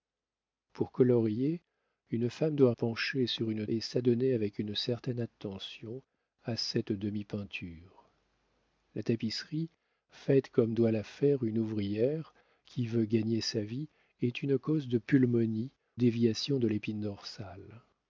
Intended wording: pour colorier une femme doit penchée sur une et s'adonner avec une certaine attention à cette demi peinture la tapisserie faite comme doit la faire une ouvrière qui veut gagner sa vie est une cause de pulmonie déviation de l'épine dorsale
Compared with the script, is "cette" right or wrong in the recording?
right